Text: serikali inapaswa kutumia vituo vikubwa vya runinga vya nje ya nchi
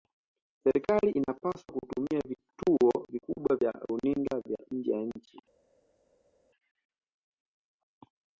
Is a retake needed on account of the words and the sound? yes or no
no